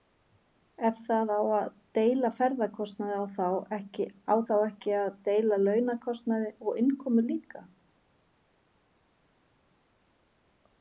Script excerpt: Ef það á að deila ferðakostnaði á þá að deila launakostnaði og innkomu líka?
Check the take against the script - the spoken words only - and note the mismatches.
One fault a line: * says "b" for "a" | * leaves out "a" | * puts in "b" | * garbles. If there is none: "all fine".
* puts in "ekki"